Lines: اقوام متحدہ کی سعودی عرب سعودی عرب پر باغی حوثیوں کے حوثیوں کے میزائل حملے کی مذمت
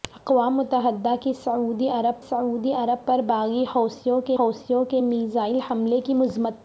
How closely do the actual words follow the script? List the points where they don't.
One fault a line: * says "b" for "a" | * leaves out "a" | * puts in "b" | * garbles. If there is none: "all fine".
all fine